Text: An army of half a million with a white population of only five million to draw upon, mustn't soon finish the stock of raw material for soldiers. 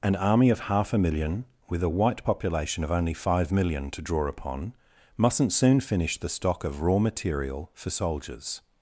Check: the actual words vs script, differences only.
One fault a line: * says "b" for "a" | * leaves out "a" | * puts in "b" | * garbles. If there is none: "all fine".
all fine